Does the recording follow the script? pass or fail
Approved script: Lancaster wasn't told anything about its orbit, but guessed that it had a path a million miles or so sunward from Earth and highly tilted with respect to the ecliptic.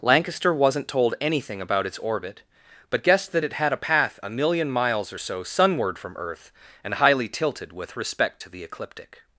pass